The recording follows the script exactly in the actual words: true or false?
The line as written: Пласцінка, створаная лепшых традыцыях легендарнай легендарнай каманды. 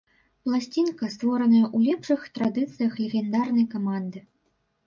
false